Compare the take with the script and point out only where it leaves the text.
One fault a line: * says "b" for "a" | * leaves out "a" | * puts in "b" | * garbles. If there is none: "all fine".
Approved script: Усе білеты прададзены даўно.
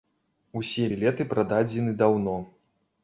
all fine